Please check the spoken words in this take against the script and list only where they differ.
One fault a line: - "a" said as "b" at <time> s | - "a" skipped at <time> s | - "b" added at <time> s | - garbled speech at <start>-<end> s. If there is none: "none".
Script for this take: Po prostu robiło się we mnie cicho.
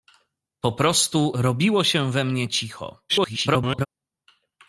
- garbled speech at 3.1-3.9 s